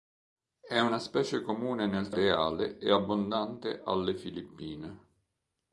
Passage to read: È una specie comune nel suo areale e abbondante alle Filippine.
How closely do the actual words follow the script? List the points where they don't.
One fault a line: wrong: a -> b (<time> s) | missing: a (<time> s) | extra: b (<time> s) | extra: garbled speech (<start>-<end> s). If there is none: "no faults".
missing: suo (2.1 s)